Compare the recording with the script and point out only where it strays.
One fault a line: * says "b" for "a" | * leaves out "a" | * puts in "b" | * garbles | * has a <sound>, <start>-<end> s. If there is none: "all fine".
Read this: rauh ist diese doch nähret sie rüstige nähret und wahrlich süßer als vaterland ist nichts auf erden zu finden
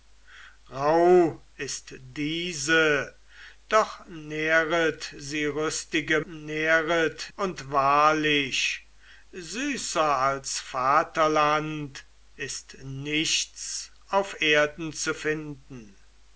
all fine